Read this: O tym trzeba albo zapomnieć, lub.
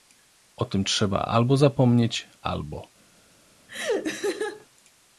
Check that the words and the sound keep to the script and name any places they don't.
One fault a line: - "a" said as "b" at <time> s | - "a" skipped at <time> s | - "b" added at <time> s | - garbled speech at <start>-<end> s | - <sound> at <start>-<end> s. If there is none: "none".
- "lub" said as "albo" at 2.4 s
- laugh at 3.7-4.7 s